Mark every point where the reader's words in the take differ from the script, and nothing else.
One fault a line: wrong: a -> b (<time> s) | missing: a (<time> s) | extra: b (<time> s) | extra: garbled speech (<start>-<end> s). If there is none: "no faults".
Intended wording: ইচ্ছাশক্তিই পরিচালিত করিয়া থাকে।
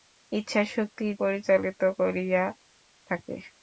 no faults